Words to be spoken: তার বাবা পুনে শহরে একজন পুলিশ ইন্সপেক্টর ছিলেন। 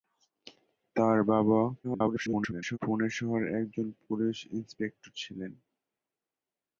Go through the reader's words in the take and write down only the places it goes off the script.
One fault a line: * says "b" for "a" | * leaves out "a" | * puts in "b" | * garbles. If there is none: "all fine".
* garbles